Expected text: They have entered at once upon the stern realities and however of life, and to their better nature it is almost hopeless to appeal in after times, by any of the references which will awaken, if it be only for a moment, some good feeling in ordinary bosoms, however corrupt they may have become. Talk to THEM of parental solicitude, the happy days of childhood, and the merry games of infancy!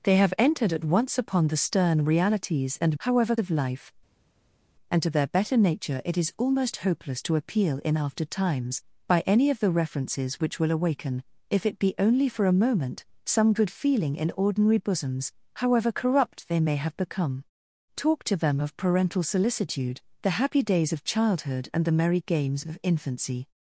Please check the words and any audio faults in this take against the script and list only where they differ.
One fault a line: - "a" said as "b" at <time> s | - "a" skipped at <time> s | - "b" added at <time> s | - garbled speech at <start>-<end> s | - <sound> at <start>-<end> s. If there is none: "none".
none